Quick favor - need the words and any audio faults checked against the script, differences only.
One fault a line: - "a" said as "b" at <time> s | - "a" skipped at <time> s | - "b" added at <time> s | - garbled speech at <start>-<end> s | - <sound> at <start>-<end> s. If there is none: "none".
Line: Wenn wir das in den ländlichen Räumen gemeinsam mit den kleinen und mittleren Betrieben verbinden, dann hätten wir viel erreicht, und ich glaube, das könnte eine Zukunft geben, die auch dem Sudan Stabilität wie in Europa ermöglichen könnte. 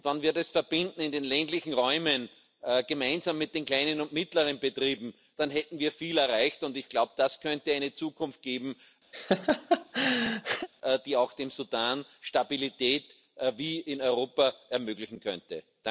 - laugh at 9.1-10.7 s